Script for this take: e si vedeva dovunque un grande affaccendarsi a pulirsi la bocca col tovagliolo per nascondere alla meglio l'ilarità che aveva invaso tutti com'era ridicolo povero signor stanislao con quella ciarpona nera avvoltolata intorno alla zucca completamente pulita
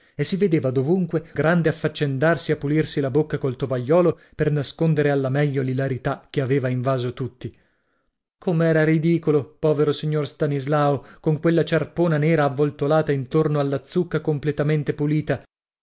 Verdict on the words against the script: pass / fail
fail